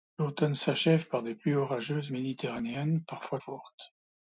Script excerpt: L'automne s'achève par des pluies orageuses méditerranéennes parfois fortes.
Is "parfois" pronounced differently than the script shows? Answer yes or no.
no